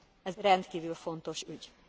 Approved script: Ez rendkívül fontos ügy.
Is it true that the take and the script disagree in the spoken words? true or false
false